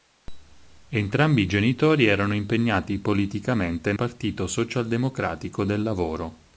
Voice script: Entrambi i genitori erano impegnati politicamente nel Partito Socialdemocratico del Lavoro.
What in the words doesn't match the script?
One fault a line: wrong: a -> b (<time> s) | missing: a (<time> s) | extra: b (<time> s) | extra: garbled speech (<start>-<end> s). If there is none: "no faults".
missing: nel (3.9 s)